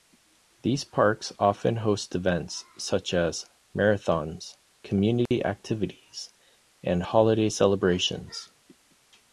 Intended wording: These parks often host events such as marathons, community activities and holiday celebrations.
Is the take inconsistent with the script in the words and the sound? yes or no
yes